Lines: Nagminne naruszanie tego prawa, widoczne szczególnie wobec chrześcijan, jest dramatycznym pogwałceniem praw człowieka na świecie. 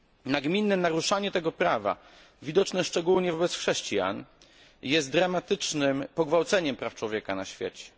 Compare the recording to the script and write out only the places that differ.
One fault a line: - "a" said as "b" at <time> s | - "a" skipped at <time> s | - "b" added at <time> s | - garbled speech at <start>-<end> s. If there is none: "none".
none